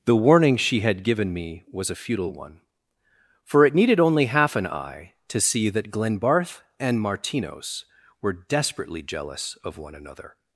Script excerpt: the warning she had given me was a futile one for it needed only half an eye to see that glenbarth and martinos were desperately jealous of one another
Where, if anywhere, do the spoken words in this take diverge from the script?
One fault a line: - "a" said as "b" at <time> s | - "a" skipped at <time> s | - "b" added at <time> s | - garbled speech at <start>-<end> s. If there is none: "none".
none